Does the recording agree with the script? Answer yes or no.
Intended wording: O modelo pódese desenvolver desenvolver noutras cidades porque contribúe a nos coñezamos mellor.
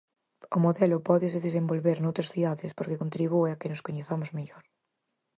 no